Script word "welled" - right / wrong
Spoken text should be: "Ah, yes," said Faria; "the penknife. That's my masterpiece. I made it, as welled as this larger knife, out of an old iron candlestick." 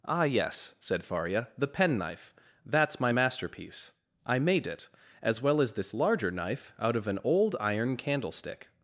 wrong